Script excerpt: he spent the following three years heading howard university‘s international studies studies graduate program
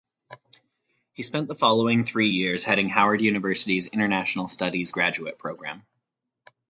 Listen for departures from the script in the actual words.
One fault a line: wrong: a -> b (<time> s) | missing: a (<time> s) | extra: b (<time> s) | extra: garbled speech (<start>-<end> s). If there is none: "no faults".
missing: studies (4.9 s)